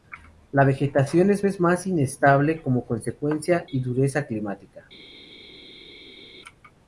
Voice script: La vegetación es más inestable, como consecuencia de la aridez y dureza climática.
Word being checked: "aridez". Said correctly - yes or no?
no